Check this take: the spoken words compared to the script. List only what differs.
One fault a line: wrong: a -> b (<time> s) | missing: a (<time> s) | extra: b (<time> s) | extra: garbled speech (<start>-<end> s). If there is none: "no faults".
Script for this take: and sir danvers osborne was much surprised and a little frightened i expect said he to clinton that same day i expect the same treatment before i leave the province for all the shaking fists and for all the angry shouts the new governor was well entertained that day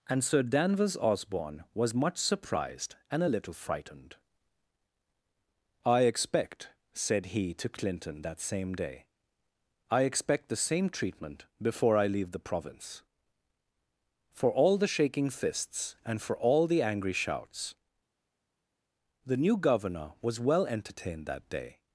no faults